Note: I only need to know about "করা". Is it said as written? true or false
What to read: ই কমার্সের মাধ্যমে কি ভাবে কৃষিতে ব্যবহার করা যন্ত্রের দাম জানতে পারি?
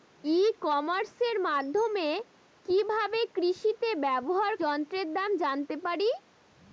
false